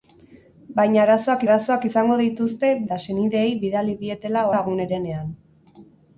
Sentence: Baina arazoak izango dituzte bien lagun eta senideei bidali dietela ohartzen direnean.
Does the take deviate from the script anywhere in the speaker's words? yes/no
yes